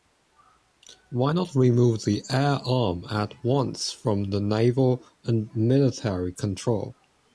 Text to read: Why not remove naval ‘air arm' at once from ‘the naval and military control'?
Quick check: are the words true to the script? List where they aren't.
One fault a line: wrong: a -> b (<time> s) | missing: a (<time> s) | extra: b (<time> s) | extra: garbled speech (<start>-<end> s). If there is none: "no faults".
wrong: naval -> the (2.1 s)